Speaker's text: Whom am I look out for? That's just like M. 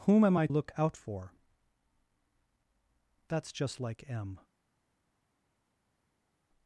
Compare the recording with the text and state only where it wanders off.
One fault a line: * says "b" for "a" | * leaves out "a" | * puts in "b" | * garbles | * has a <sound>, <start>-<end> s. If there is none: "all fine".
all fine